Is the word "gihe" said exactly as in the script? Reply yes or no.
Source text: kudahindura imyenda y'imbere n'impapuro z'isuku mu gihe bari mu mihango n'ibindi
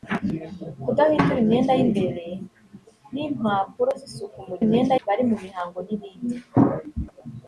no